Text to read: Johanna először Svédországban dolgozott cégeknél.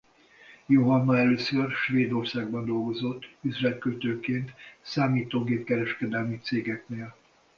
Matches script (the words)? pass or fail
fail